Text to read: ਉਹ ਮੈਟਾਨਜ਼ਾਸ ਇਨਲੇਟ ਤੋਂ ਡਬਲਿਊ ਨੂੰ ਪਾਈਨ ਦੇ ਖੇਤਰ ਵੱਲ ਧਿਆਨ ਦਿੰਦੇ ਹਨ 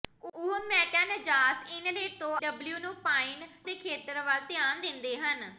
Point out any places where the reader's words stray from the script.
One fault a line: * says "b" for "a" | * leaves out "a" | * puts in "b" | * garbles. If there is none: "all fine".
all fine